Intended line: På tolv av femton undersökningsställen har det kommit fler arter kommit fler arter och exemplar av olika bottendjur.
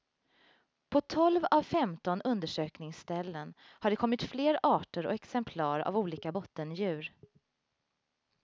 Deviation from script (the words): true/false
true